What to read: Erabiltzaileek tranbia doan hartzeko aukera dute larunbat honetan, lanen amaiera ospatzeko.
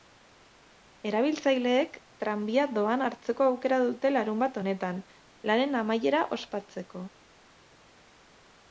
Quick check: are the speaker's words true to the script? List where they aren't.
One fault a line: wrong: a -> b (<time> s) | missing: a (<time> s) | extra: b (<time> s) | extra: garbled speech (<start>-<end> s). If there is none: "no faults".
no faults